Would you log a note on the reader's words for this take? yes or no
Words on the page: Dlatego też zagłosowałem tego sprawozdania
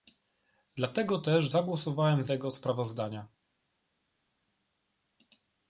no